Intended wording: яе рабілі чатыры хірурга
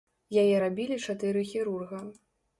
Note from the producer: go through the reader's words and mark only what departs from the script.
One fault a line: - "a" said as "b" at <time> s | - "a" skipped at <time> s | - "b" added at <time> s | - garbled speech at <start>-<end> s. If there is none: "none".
none